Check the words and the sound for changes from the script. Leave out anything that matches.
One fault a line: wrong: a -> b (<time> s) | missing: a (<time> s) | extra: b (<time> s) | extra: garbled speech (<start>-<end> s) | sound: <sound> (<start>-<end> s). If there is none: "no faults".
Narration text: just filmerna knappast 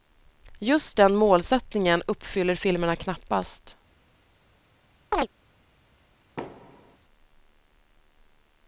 extra: den målsättningen uppfyller (1.0 s)
sound: chirp (5.1-5.3 s)
sound: thud (6.4-7.0 s)